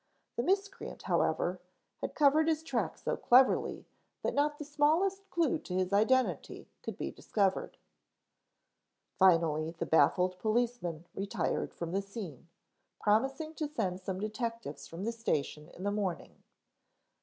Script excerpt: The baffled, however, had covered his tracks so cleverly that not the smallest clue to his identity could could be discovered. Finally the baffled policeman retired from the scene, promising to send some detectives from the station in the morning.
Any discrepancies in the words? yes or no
yes